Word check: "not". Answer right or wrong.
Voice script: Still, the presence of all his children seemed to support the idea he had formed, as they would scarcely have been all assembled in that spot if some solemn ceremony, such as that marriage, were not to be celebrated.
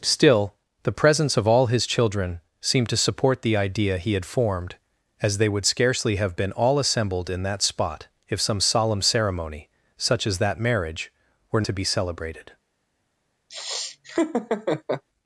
wrong